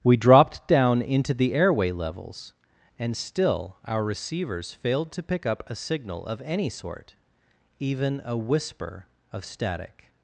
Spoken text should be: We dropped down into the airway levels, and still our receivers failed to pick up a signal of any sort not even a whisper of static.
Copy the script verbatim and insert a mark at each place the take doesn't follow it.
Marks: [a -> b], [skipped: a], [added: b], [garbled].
We dropped down into the airway levels, and still our receivers failed to pick up a signal of any sort [skipped: not] even a whisper of static.